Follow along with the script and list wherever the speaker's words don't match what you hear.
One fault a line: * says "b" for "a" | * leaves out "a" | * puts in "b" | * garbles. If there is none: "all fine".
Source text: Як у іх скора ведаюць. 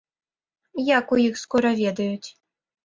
all fine